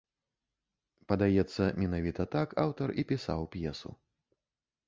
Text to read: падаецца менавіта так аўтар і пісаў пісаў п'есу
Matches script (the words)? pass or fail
fail